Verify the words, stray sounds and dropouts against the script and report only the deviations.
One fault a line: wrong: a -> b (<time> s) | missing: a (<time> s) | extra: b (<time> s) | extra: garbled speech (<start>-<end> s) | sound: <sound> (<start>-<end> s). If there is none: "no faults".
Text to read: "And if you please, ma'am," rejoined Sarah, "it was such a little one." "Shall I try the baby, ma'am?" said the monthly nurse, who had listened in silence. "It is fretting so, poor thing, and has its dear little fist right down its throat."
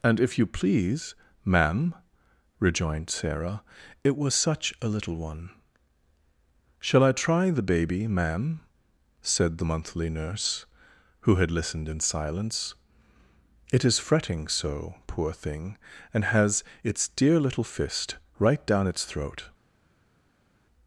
no faults